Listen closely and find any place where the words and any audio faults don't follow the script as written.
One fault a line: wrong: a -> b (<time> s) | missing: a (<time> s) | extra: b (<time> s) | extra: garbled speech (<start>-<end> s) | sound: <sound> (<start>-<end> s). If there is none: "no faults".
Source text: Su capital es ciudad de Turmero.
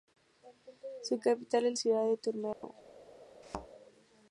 sound: dropout (2.5-2.6 s)
sound: thud (3.4-3.7 s)